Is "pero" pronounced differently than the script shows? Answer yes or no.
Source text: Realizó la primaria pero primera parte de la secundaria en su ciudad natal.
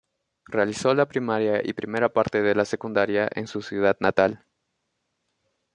yes